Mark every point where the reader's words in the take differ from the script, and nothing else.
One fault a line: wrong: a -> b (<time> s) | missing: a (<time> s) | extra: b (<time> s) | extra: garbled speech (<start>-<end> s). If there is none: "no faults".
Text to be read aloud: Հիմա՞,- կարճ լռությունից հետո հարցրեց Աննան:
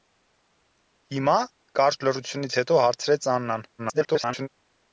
extra: garbled speech (3.8-4.5 s)